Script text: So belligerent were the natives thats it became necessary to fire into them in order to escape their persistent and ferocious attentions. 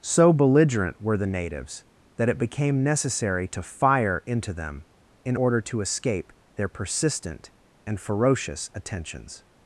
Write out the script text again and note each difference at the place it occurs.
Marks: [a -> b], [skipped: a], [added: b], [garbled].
So belligerent were the natives [thats -> that] it became necessary to fire into them in order to escape their persistent and ferocious attentions.